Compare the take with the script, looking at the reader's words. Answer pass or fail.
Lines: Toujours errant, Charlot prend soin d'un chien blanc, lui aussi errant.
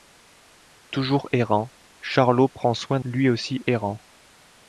fail